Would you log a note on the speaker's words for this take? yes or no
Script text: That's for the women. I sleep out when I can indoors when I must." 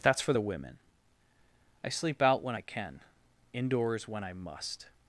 no